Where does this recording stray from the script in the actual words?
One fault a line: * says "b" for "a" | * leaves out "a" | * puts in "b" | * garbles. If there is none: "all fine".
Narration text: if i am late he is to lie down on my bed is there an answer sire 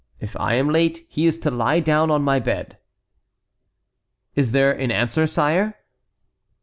all fine